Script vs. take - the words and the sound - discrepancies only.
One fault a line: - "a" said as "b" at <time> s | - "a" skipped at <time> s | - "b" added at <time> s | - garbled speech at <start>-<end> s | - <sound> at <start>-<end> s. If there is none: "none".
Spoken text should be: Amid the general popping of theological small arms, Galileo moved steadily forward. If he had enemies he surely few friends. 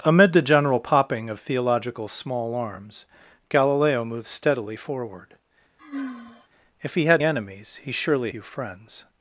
- sigh at 5.8-6.5 s